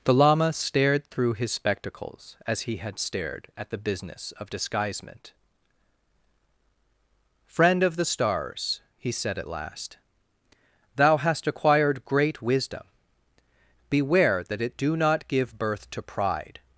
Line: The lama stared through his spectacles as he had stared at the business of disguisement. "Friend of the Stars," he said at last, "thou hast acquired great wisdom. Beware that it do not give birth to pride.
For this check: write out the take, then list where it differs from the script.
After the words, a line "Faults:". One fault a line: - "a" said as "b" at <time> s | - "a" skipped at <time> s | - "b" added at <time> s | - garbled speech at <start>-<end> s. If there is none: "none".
The lama stared through his spectacles as he had stared at the business of disguisement. "Friend of the Stars," he said at last, "thou hast acquired great wisdom. Beware that it do not give birth to pride.
Faults:
none